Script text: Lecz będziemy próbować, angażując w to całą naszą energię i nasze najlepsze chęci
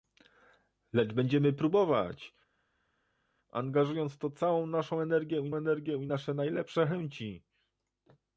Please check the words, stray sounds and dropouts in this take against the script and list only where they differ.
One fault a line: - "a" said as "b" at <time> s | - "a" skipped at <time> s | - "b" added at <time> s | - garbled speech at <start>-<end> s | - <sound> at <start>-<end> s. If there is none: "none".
- "energię i" added at 5.5 s